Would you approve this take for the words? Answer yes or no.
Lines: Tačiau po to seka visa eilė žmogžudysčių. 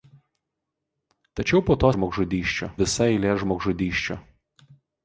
no